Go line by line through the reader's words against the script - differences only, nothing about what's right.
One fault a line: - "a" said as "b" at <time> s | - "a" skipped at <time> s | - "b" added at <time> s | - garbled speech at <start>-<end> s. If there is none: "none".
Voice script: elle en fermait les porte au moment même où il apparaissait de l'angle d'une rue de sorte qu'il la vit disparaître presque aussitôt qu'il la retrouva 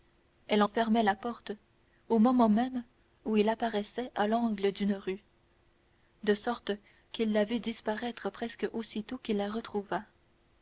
- "les" said as "la" at 1.0 s
- "de" said as "à" at 4.1 s